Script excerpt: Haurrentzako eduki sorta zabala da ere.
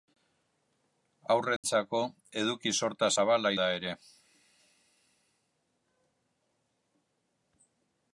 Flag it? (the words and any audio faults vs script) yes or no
yes